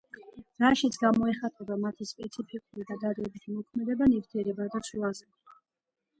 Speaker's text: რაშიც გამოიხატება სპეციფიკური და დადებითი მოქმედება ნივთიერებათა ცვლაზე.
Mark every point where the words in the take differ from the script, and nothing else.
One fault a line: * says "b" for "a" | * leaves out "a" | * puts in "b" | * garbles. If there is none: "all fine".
* puts in "მათი"